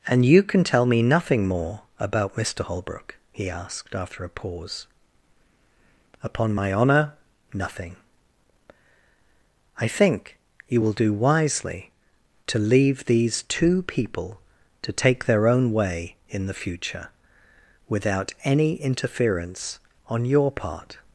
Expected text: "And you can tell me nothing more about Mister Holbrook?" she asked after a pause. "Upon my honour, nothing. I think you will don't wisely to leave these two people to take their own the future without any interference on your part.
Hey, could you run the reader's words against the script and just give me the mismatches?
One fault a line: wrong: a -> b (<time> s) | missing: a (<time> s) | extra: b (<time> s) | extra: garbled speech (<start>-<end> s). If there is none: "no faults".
wrong: she -> he (3.3 s)
wrong: don't -> do (10.9 s)
extra: way in (15.7 s)